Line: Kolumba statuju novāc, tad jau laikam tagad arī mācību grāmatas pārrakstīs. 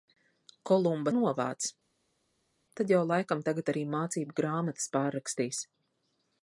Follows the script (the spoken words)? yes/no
no